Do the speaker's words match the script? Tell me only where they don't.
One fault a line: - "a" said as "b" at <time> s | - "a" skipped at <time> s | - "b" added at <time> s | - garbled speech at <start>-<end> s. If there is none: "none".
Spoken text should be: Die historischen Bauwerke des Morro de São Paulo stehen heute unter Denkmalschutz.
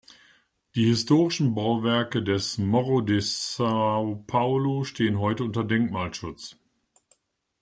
none